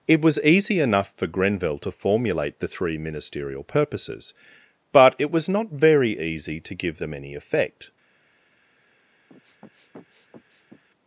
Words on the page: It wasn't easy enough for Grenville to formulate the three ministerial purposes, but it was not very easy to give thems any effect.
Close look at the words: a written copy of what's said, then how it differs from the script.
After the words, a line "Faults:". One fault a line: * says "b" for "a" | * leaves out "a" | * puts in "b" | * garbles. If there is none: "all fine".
It was easy enough for Grenville to formulate the three ministerial purposes, but it was not very easy to give them any effect.
Faults:
* says "was" for "wasn't"
* says "them" for "thems"